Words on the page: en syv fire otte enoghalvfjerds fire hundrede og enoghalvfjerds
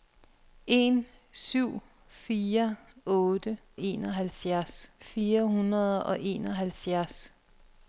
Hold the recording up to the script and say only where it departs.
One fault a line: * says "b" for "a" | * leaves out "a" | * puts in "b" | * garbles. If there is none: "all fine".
all fine